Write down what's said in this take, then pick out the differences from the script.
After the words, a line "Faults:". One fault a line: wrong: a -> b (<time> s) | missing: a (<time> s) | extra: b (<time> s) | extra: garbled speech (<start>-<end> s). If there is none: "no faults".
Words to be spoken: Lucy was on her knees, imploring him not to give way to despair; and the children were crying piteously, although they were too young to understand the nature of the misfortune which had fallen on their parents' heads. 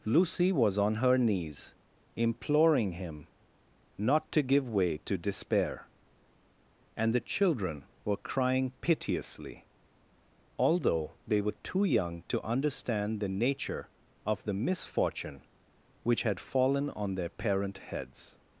Lucy was on her knees, imploring him not to give way to despair; and the children were crying piteously, although they were too young to understand the nature of the misfortune which had fallen on their parent' heads.
Faults:
wrong: parents -> parent (17.3 s)